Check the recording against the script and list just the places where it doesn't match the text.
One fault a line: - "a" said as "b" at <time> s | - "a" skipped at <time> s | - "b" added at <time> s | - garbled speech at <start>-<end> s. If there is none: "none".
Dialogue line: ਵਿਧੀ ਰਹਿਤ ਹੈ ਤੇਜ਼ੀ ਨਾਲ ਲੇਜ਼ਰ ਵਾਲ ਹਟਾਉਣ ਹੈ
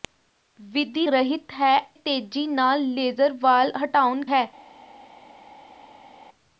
none